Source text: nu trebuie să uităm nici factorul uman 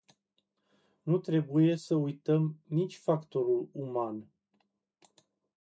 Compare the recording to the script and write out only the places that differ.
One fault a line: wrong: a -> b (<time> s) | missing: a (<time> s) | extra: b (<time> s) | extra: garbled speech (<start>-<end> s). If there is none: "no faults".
no faults